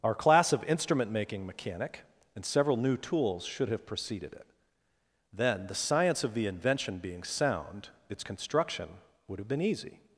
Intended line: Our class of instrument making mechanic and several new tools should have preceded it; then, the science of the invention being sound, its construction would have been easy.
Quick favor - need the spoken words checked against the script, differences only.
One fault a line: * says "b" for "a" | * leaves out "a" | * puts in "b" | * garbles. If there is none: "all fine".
all fine